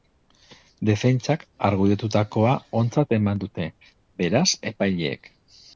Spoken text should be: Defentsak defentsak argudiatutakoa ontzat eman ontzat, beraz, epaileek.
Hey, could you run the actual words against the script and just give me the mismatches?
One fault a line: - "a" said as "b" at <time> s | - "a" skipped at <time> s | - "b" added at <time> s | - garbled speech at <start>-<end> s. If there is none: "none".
- "defentsak" skipped at 1.4 s
- "ontzat" said as "dute" at 3.5 s